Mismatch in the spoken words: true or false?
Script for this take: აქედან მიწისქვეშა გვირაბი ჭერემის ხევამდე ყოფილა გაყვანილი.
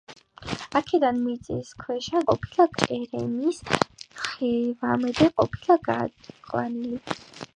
true